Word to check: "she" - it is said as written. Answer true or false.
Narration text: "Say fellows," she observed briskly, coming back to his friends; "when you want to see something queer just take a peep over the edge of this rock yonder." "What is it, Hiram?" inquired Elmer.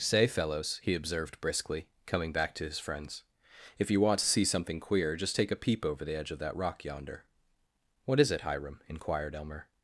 false